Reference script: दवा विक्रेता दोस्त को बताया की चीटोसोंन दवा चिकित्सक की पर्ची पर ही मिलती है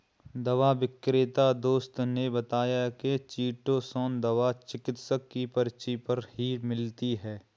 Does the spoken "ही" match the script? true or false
true